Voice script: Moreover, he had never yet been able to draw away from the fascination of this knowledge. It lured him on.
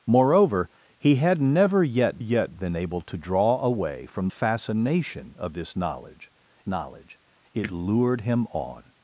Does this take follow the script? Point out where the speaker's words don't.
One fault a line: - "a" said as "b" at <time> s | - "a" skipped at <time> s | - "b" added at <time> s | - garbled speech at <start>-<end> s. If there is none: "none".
- "yet" added at 2.2 s
- "the" skipped at 4.3 s
- "knowledge" added at 6.7 s